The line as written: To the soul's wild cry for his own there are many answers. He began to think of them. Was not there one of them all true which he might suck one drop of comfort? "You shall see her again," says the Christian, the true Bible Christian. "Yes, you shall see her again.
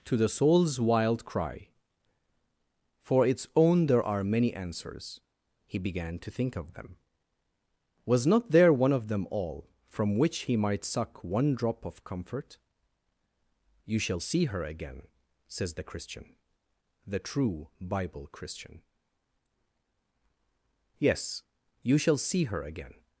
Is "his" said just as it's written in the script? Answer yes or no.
no